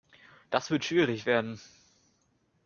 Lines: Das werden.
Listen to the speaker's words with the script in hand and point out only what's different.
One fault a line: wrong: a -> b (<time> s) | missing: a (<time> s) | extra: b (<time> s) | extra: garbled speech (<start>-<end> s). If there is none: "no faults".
extra: wird schwierig (0.7 s)